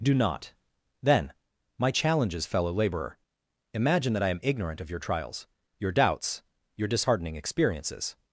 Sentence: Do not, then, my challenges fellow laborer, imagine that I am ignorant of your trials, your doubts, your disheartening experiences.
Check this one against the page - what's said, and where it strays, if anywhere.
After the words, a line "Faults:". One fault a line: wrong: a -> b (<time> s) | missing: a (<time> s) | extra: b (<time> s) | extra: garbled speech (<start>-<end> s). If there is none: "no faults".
Do not, then, my challenges fellow laborer, imagine that I am ignorant of your trials, your doubts, your disheartening experiences.
Faults:
no faults